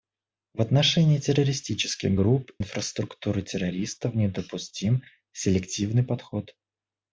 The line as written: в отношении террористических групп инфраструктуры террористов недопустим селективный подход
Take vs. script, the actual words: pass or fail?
pass